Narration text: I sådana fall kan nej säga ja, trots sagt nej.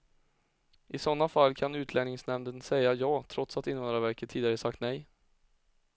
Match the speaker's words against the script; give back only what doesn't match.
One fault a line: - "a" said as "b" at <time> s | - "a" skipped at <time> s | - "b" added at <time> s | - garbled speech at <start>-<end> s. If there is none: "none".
- "nej" said as "utlänningsnämnden" at 1.8 s
- "att invandrarverket tidigare" added at 3.6 s